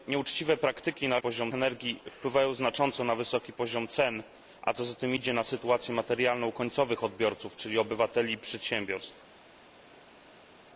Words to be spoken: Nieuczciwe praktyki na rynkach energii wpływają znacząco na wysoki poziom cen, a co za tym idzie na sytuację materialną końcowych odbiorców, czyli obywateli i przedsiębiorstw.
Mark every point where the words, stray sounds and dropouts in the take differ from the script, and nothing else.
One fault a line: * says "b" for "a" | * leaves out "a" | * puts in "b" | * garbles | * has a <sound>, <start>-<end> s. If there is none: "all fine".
* says "poziom" for "rynkach"